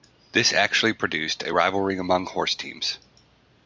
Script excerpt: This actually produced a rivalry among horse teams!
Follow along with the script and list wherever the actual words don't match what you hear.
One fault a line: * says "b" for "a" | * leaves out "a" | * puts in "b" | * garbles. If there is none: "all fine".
all fine